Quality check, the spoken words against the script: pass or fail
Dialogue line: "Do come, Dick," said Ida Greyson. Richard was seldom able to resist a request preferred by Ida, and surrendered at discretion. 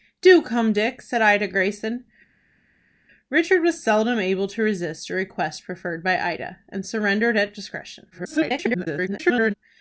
fail